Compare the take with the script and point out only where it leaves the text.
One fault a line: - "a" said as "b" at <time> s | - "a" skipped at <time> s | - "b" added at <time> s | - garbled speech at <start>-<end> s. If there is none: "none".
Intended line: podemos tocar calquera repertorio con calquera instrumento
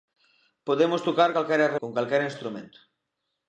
- "repertorio" skipped at 1.7 s